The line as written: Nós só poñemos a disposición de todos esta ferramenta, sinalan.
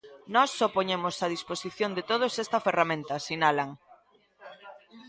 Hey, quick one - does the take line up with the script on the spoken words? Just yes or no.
yes